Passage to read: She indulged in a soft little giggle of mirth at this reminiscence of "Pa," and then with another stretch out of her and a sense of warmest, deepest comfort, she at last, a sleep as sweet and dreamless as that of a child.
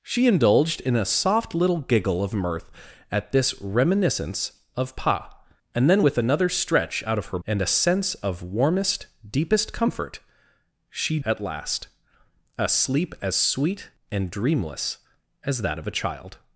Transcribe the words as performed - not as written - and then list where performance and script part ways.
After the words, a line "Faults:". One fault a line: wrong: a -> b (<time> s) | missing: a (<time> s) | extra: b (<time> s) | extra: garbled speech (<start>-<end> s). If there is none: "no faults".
She indulged in a soft little giggle of mirth at this reminiscence of "Pa," and then with another stretch out of her and a sense of warmest, deepest comfort, she at last, a sleep as sweet and dreamless as that of a child.
Faults:
no faults